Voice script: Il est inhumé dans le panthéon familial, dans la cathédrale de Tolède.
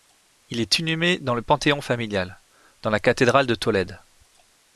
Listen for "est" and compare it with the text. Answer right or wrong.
right